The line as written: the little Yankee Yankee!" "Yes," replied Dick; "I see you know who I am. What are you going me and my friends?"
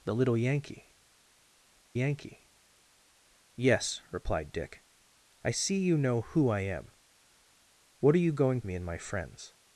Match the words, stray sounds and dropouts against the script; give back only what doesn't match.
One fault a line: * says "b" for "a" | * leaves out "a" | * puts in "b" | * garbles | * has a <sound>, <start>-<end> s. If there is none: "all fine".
all fine